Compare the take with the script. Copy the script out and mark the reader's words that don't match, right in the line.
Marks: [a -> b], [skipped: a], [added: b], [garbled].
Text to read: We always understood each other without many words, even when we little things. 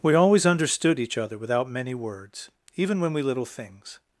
We always understood each other without many words, even when we little things.